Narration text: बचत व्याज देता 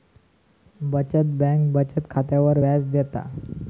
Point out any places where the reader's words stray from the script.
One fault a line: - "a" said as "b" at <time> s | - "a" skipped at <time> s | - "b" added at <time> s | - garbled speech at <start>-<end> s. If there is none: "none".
- "बँक बचत खात्यावर" added at 1.4 s